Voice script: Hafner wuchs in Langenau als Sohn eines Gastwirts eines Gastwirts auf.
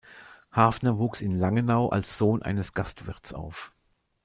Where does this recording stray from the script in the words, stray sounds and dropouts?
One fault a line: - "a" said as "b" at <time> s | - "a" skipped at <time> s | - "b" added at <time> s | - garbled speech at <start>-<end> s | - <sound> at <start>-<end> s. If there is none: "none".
- "eines Gastwirts" skipped at 3.3 s